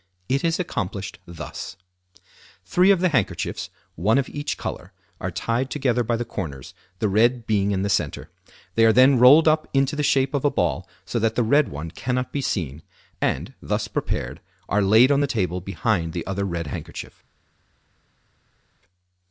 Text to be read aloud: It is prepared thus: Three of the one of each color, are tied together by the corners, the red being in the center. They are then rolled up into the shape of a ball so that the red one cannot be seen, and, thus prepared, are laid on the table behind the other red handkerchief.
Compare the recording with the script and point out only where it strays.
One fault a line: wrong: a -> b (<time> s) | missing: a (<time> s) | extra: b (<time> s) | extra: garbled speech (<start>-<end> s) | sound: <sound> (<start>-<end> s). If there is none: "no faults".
wrong: prepared -> accomplished (0.6 s)
extra: handkerchiefs (3.1 s)